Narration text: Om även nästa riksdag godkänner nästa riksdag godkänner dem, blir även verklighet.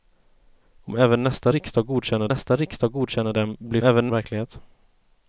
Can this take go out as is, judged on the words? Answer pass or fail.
pass